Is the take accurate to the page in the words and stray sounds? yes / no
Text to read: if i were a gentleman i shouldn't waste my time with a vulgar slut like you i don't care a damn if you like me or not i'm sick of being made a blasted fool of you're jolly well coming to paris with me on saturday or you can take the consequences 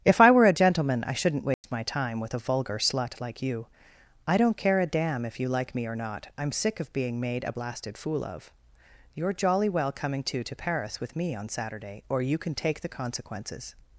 no